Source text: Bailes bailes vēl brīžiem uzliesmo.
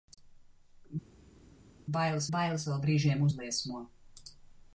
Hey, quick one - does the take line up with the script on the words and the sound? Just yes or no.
yes